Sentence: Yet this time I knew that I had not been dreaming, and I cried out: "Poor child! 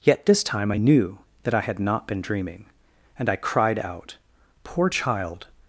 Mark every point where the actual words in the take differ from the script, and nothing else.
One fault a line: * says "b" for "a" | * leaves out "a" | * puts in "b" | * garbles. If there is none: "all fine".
all fine